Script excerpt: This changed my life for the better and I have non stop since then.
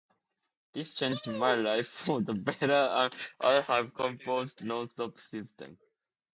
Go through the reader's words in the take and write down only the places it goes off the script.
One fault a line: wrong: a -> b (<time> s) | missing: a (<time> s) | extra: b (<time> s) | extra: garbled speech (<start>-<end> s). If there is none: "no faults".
extra: composed (3.9 s)